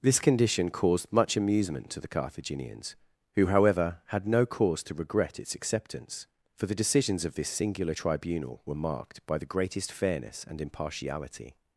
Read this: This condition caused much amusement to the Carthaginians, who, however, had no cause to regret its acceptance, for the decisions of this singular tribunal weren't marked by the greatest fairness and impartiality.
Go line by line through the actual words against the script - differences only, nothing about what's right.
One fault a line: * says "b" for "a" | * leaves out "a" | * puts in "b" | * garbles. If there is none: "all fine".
* says "were" for "weren't"